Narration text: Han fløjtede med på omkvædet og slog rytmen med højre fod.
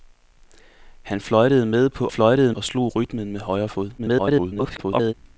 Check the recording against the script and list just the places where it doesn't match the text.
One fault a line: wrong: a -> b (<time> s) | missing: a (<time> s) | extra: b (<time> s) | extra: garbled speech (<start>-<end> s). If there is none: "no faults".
wrong: omkvædet -> fløjtede (2.1 s)
extra: garbled speech (4.0-5.1 s)